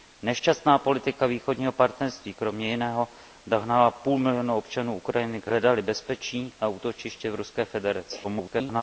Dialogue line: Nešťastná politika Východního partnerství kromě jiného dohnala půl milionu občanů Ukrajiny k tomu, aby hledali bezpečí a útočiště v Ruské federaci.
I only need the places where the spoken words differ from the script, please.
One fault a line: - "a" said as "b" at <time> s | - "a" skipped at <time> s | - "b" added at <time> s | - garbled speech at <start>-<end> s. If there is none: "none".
- "tomu aby" skipped at 5.5 s
- garbled speech at 8.2-8.8 s